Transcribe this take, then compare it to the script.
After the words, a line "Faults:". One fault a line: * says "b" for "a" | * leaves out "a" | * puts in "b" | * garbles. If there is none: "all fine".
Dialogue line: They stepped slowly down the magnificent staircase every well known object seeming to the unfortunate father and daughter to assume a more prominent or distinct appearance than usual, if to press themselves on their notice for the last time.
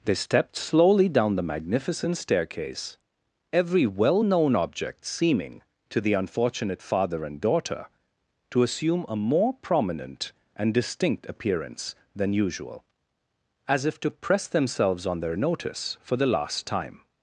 They stepped slowly down the magnificent staircase every well known object seeming to the unfortunate father and daughter to assume a more prominent and distinct appearance than usual, as if to press themselves on their notice for the last time.
Faults:
* says "and" for "or"
* puts in "as"